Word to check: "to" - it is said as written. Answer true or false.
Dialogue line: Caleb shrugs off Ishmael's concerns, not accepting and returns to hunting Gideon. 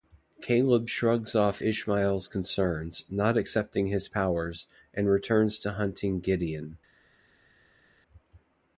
true